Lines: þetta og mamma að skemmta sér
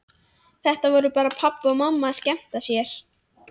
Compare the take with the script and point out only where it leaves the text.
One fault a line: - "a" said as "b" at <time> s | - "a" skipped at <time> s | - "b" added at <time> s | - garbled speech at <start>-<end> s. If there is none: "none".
- "voru bara pabbi" added at 0.9 s